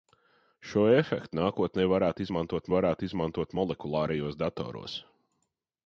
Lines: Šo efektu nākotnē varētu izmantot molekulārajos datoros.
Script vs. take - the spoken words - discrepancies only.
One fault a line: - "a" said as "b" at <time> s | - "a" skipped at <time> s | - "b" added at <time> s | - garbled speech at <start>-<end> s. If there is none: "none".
- "varētu izmantot" added at 2.7 s